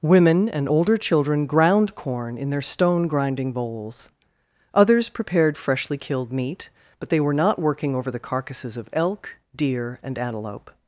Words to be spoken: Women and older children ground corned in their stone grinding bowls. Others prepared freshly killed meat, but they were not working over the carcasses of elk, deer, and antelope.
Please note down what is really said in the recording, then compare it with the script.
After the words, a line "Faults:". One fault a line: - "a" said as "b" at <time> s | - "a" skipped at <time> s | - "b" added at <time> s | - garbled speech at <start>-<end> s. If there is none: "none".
Women and older children ground corn in their stone grinding bowls. Others prepared freshly killed meat, but they were not working over the carcasses of elk, deer, and antelope.
Faults:
- "corned" said as "corn" at 2.0 s